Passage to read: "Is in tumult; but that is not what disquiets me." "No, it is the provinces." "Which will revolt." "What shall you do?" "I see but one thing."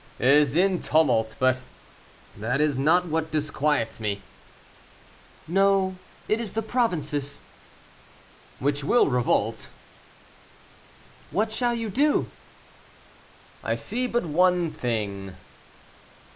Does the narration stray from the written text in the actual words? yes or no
no